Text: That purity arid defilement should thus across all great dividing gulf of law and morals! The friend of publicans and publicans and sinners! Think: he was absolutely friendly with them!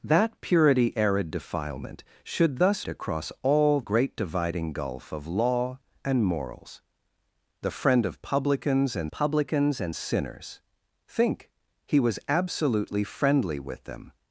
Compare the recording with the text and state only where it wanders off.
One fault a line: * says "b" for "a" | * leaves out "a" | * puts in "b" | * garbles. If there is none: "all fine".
all fine